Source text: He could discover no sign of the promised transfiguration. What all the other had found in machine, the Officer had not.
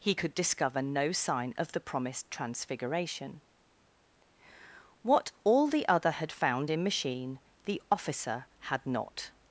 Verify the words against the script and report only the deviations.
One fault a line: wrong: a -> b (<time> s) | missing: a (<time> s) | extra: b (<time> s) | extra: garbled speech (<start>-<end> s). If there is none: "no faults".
no faults